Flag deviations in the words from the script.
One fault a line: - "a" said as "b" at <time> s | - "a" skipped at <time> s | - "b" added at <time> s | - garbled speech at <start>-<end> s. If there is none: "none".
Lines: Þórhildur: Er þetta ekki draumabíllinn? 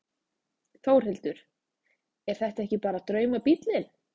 - "bara" added at 2.9 s